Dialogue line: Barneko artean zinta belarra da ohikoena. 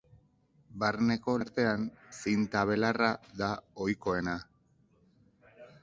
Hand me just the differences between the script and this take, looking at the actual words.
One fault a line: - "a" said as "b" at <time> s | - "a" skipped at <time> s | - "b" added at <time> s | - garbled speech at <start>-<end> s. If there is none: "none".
none